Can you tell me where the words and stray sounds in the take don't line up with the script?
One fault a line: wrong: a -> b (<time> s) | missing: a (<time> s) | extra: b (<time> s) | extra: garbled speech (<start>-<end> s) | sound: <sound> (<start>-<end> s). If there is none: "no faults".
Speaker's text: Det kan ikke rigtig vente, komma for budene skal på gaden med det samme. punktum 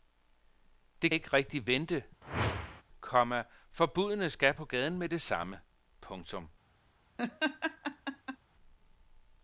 missing: kan (1.1 s)
sound: whoosh (2.2-2.8 s)
sound: laugh (7.2-8.4 s)